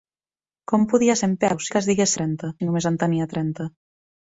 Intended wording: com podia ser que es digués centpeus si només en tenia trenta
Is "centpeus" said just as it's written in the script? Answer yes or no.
no